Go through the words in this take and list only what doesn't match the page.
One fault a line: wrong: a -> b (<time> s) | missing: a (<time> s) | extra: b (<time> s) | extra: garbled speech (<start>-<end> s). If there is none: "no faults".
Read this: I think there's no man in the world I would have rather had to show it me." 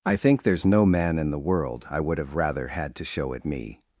no faults